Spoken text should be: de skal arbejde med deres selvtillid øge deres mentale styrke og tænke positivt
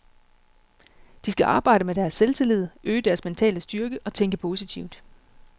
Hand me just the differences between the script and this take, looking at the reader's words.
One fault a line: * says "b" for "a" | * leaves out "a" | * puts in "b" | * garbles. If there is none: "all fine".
all fine